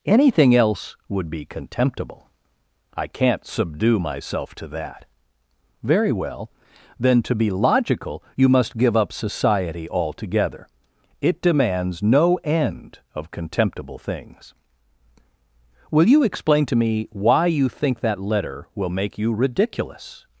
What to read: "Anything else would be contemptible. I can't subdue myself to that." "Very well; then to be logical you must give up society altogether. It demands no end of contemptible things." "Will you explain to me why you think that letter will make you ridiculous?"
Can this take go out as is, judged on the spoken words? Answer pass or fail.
pass